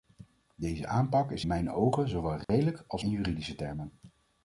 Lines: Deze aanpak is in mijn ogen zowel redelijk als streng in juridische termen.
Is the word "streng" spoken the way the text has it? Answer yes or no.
no